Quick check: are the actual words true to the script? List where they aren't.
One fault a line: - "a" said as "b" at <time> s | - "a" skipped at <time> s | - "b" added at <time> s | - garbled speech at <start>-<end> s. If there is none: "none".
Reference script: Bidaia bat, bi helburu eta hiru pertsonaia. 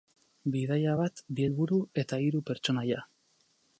none